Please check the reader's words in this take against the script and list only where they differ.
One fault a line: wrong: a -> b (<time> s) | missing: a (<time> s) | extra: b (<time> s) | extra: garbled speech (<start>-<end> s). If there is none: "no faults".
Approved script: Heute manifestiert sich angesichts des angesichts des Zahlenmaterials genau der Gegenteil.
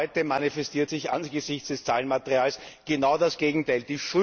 missing: angesichts des (1.8 s)
wrong: der -> das (3.2 s)